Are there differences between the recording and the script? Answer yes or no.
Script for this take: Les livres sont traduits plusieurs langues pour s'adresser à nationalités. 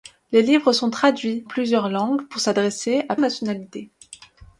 no